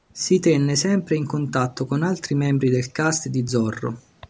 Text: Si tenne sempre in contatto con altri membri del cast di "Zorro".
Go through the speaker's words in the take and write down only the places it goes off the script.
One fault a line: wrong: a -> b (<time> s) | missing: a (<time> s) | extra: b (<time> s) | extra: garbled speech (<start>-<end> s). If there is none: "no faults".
no faults